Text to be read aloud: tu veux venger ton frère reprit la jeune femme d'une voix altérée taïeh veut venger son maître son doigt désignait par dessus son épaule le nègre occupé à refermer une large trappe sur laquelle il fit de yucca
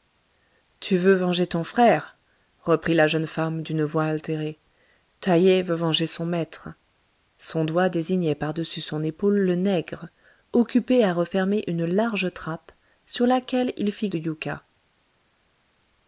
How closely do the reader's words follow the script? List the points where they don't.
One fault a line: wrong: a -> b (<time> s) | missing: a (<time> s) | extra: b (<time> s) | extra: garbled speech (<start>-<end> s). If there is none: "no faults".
no faults